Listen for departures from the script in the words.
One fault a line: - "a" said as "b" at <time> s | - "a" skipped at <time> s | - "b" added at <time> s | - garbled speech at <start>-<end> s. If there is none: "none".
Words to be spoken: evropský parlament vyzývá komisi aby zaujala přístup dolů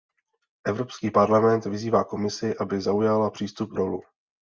none